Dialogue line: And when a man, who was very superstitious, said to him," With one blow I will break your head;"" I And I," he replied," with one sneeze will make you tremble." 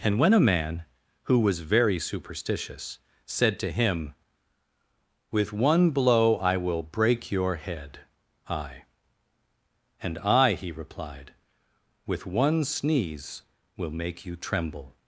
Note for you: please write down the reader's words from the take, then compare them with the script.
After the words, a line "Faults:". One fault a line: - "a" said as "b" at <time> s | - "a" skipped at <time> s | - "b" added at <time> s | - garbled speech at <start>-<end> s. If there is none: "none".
And when a man, who was very superstitious, said to him," With one blow I will break your head;"" I And I," he replied," with one sneeze will make you tremble."
Faults:
none